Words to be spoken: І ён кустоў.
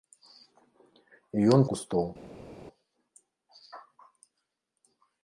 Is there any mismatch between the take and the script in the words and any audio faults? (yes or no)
no